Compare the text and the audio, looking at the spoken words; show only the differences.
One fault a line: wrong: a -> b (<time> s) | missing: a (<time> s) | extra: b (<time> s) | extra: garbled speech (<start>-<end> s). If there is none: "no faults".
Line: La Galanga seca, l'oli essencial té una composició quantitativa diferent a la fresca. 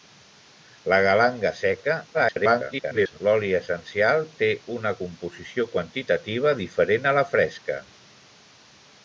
extra: garbled speech (2.1-3.2 s)